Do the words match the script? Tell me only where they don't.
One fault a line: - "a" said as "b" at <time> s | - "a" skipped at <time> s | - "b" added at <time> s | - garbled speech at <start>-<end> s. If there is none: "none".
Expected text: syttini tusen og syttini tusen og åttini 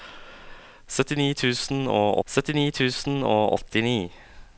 none